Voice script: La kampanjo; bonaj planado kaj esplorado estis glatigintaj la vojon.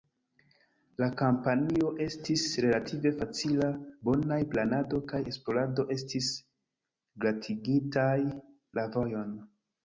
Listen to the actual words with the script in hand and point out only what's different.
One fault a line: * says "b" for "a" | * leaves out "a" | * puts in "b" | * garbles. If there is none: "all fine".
* puts in "estis relative facila"